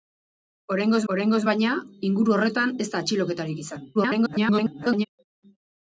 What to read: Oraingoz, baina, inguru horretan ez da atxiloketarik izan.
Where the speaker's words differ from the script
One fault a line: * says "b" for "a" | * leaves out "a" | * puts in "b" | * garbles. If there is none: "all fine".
* puts in "oraingoz"
* garbles